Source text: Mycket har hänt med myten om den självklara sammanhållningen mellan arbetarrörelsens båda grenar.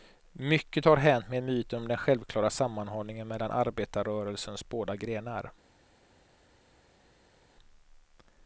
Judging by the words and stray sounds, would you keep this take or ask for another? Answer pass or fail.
pass